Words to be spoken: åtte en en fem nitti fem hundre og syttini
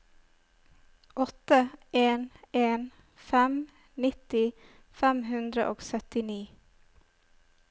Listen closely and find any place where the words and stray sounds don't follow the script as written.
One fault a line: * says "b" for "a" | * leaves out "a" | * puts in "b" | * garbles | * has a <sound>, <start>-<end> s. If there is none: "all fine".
all fine